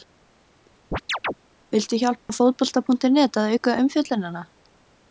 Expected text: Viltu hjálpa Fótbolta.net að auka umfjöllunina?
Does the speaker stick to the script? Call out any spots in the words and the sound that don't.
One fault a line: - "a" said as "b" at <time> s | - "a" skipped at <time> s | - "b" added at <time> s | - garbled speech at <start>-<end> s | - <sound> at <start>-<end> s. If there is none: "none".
- chirp at 0.9-1.3 s
- dropout at 2.2-2.3 s